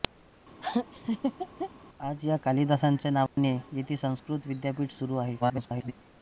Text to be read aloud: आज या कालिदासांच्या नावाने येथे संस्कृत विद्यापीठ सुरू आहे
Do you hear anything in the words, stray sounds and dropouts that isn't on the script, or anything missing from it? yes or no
yes